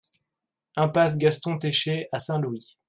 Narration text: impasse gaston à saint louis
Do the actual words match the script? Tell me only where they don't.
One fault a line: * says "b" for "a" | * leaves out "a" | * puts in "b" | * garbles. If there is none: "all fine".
* puts in "técher"